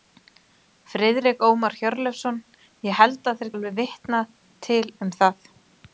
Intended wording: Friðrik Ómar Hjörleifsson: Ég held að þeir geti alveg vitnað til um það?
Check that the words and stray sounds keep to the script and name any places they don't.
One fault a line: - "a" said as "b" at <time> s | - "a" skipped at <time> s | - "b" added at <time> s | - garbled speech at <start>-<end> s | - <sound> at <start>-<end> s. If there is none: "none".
- "geti" skipped at 3.5 s